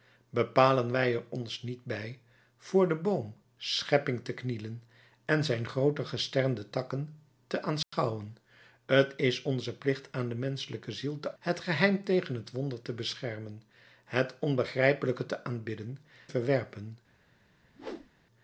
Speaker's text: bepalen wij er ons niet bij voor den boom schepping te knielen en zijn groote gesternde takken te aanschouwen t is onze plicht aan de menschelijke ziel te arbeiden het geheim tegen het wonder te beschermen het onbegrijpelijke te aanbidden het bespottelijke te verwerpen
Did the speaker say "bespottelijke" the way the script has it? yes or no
no